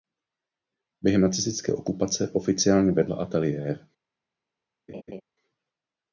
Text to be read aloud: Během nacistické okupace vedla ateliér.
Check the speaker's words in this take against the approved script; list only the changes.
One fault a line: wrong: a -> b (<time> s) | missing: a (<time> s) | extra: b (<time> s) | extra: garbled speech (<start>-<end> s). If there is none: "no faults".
extra: oficiálně (2.3 s)